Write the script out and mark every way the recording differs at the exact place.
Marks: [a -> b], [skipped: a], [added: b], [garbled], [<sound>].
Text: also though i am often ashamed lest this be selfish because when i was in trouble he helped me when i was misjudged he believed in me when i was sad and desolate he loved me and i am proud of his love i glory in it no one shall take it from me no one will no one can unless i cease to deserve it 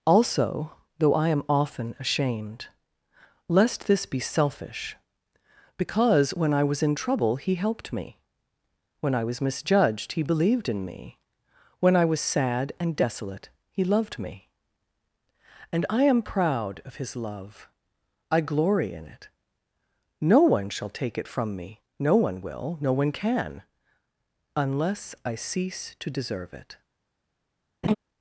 also though i am often ashamed lest this be selfish because when i was in trouble he helped me when i was misjudged he believed in me when i was sad and desolate he loved me and i am proud of his love i glory in it no one shall take it from me no one will no one can unless i cease to deserve it [laugh]